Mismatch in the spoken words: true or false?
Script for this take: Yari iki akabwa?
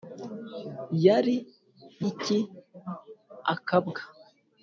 false